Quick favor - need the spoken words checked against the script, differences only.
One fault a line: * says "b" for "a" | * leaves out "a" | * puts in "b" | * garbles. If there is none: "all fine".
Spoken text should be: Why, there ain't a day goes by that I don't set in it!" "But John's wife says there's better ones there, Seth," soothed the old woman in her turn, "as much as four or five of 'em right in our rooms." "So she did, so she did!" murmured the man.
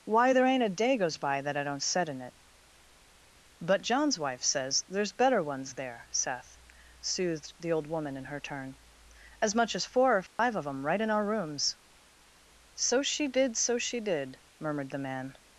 all fine